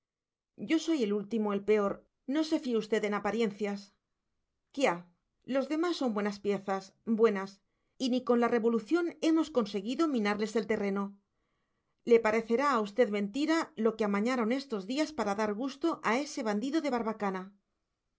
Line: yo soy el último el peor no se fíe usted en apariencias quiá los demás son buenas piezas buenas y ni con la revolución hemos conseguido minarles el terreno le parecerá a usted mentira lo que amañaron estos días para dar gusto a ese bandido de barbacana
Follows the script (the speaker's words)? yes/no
yes